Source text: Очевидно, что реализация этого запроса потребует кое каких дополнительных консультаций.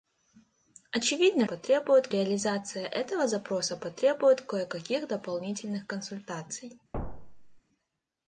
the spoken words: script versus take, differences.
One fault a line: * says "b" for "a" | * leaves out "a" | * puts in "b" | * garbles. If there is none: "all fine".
* says "потребует" for "что"